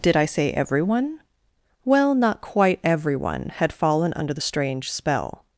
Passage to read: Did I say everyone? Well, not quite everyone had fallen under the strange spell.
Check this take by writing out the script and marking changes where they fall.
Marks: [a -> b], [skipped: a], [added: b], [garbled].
Did I say everyone? Well, not quite everyone had fallen under the strange spell.